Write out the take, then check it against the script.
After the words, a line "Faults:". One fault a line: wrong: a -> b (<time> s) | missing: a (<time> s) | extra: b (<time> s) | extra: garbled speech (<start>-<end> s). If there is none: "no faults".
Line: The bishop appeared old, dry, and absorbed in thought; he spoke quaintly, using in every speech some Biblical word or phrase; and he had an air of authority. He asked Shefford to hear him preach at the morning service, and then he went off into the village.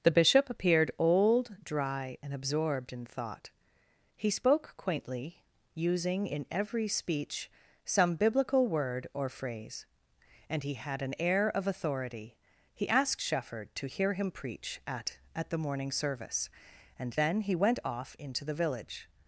The bishop appeared old, dry, and absorbed in thought; he spoke quaintly, using in every speech some Biblical word or phrase; and he had an air of authority. He asked Shefford to hear him preach at at the morning service, and then he went off into the village.
Faults:
extra: at (15.3 s)